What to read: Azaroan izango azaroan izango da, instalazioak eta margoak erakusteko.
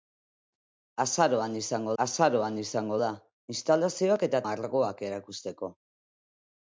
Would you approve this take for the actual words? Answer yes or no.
yes